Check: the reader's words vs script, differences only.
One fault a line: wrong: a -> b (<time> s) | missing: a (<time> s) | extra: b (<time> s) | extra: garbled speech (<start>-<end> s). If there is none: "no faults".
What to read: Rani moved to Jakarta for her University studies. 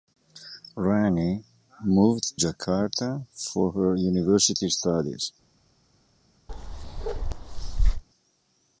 missing: to (2.4 s)